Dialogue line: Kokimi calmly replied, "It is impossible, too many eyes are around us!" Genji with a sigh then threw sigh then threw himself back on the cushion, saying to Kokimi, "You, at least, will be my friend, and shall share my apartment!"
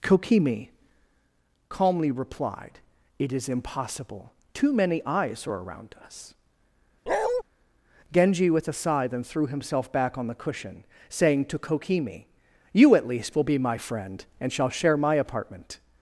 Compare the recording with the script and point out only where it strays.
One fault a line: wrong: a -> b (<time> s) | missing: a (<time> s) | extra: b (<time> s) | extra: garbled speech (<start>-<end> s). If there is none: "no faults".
missing: sigh then threw (9.5 s)